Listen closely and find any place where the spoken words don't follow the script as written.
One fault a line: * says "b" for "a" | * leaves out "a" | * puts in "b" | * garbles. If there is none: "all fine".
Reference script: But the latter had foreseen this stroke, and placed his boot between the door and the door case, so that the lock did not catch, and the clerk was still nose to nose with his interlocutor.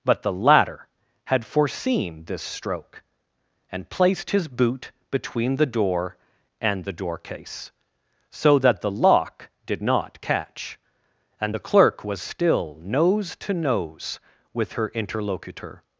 * says "her" for "his"